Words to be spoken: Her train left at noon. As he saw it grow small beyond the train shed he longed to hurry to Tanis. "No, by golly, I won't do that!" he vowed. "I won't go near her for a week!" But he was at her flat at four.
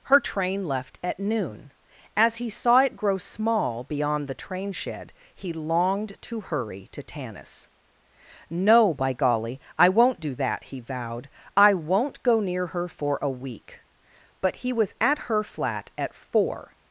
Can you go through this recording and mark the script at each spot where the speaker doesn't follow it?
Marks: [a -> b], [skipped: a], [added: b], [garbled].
Her train left at noon. As he saw it grow small beyond the train shed he longed to hurry to Tanis. "No, by golly, I won't do that!" he vowed. "I won't go near her for a week!" But he was at her flat at four.